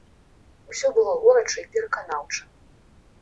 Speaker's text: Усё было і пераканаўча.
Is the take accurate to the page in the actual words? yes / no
no